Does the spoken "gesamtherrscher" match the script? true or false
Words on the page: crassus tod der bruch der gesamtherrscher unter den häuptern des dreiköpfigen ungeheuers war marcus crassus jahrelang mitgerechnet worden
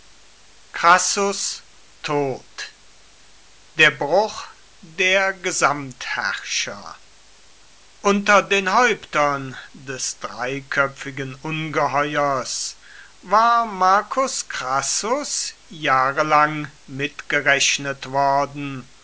true